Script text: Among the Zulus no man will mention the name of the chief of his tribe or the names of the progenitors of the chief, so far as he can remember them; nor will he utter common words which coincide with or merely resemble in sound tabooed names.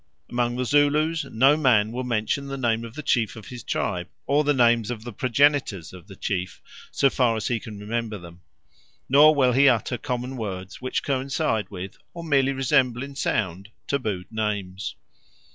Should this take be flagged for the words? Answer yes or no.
no